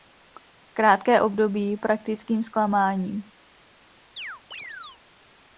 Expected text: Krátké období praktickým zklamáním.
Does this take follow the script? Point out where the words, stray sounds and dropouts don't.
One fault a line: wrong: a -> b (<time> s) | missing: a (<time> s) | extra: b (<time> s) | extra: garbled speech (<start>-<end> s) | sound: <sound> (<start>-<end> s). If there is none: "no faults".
sound: chirp (4.2-5.0 s)